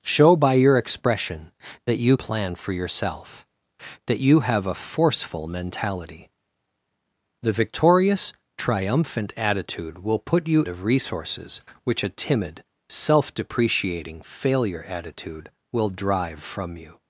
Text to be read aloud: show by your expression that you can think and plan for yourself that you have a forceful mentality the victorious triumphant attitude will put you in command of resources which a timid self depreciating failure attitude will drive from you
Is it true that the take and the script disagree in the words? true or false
true